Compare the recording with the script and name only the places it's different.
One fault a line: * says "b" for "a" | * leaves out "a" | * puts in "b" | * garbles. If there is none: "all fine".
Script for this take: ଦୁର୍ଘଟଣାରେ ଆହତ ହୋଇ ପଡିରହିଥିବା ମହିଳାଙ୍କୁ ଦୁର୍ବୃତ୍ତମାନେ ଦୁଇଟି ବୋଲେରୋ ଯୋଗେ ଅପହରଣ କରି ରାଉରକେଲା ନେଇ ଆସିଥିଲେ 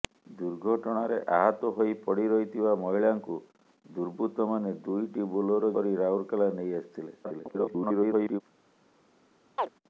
* leaves out "ଯୋଗେ ଅପହରଣ"
* garbles